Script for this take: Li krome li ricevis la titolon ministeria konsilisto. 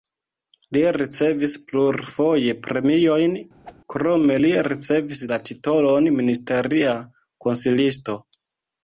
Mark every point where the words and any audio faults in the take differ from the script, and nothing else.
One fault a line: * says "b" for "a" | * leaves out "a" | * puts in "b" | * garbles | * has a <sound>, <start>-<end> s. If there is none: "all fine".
* puts in "ricevis plurfoje premiojn"
* has a whoosh, 3.6-3.8 s